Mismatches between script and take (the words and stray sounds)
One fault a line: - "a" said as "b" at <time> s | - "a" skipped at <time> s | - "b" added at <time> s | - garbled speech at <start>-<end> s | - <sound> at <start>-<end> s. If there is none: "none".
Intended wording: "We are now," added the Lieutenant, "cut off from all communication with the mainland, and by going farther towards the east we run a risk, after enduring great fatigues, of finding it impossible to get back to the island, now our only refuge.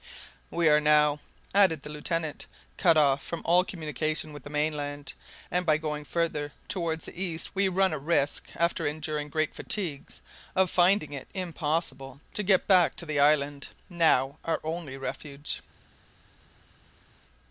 none